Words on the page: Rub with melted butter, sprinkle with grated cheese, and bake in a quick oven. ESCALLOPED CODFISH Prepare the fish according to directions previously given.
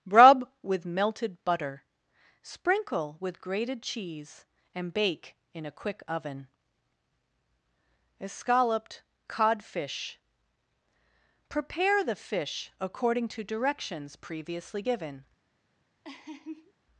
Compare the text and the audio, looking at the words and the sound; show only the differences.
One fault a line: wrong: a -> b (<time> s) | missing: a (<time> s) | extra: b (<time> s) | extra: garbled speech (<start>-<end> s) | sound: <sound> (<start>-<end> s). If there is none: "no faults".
sound: laugh (16.0-16.7 s)